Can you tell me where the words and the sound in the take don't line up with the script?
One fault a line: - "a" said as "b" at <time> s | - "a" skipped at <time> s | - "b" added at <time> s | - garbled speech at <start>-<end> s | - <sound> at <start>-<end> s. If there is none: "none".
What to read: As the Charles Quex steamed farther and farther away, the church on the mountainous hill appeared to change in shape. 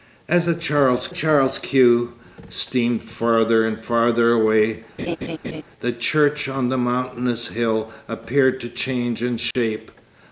- "Charles" added at 1.1 s
- laugh at 5.0-5.6 s
- dropout at 9.5-9.6 s